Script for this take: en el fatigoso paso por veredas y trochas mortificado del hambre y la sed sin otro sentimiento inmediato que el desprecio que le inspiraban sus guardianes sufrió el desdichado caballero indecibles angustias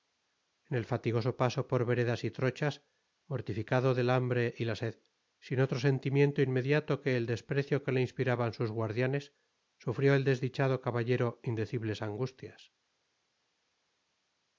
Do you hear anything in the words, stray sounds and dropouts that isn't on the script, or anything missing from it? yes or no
no